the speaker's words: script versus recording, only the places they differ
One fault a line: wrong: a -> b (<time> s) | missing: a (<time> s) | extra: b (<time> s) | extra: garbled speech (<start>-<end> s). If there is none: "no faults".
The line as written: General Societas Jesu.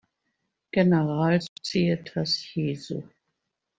no faults